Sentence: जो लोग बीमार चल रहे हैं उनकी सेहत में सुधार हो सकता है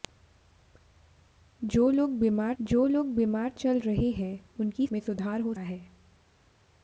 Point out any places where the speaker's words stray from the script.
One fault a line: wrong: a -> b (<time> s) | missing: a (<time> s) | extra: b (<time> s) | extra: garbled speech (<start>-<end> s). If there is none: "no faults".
extra: जो लोग बीमार (2.6 s)
missing: सेहत (4.9 s)
missing: सकता (5.5 s)